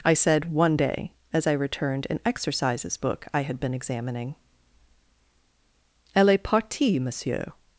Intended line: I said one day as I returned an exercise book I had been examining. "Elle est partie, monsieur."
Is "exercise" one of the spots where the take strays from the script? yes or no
yes